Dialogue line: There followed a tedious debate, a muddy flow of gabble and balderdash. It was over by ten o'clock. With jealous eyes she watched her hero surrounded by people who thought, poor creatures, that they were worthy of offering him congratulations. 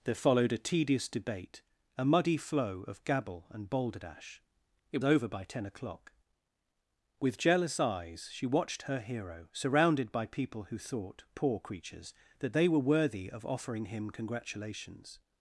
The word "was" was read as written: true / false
false